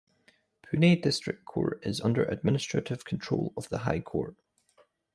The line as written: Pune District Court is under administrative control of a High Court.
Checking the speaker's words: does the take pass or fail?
fail